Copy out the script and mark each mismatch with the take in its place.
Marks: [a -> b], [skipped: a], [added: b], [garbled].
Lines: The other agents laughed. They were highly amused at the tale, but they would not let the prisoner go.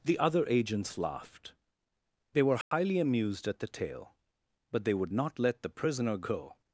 The other agents laughed. They were highly amused at the tale, but they would not let the prisoner go.